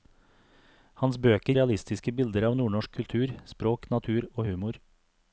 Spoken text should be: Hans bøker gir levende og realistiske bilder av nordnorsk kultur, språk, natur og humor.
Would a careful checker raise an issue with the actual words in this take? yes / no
yes